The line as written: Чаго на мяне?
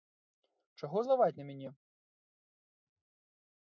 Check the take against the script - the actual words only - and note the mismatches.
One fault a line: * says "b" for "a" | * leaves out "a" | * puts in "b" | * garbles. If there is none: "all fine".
* puts in "злаваць"